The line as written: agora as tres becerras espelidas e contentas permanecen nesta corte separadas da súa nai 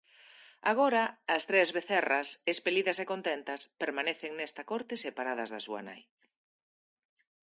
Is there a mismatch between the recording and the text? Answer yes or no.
no